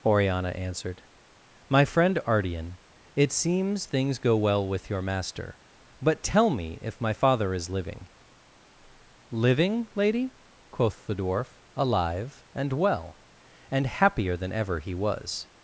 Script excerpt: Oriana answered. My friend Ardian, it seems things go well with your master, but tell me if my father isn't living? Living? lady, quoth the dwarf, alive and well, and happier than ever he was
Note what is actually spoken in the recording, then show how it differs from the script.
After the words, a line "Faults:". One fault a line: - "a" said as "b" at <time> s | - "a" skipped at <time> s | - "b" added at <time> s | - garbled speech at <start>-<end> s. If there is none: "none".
Oriana answered. My friend Ardian, it seems things go well with your master, but tell me if my father is living? Living? lady, quoth the dwarf, alive and well, and happier than ever he was
Faults:
- "isn't" said as "is" at 7.5 s